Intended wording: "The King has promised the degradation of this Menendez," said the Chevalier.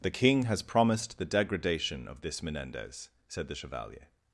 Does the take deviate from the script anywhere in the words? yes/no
no